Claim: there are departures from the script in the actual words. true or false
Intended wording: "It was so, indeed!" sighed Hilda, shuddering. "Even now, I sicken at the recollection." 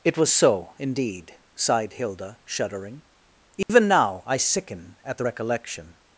false